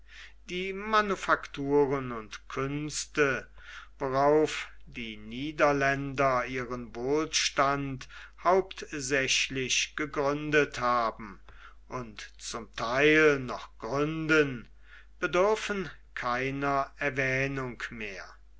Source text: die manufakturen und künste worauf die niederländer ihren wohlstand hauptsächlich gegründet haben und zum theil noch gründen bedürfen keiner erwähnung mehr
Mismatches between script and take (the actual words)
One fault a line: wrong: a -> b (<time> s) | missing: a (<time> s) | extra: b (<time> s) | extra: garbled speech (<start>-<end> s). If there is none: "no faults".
no faults